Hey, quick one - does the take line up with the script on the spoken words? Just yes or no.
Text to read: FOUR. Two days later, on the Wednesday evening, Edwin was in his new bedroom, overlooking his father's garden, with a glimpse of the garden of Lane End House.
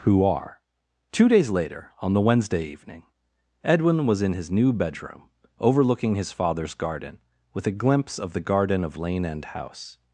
no